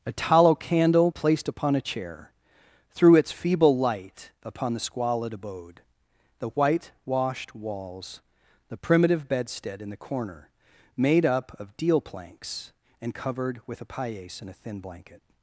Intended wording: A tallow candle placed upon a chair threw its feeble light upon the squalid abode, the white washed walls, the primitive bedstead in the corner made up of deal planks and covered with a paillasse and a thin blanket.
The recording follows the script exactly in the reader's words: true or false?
true